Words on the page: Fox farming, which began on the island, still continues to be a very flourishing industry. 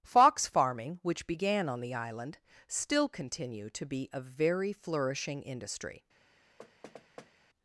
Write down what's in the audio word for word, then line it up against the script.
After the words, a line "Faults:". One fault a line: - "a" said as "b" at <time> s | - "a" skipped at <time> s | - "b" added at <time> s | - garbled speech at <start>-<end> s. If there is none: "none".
Fox farming, which began on the island, still continue to be a very flourishing industry.
Faults:
- "continues" said as "continue" at 3.1 s